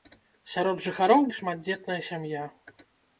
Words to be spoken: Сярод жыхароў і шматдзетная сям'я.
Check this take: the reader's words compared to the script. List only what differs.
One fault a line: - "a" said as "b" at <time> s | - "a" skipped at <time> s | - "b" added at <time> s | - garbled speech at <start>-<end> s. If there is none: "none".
none